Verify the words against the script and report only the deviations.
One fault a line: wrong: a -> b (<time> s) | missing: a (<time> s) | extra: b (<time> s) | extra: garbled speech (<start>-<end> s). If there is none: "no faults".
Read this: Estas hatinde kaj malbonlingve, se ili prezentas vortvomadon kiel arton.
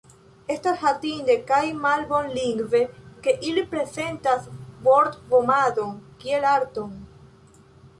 wrong: se -> ke (3.3 s)